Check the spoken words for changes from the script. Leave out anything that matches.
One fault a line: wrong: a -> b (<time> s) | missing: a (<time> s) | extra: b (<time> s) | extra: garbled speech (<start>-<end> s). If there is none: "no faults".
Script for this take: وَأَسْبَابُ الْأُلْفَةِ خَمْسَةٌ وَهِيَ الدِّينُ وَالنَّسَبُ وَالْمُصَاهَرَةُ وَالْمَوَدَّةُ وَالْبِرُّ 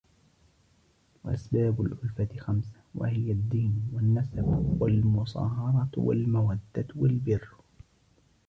no faults